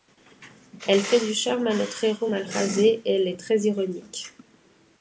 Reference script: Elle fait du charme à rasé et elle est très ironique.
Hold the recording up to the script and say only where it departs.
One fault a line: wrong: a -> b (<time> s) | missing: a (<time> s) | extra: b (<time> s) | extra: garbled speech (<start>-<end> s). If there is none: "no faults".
extra: notre héros mal (1.8 s)